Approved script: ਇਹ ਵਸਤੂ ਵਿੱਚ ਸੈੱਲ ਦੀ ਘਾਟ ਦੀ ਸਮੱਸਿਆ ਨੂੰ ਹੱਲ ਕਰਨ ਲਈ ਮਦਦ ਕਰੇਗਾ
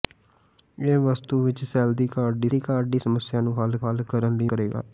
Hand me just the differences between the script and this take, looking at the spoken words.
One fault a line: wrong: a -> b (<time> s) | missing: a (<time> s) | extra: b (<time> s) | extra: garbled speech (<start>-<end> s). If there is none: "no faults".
extra: ਦੀ ਘਾਟ ਦੀ (2.5 s)
extra: ਹੱਲ (3.8 s)
missing: ਮਦਦ (4.5 s)